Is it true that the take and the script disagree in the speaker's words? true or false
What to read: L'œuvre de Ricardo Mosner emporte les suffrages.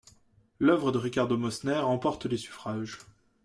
false